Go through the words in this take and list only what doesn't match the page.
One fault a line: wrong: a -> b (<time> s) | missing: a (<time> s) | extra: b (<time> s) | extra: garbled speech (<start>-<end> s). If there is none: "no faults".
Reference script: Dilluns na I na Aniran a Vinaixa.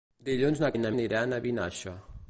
no faults